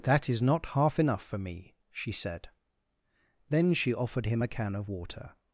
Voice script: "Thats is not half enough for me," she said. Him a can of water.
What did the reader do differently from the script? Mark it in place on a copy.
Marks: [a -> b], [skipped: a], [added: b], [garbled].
["Thats -> That] is not half enough for me," she said. [added: Then she offered] Him a can of water.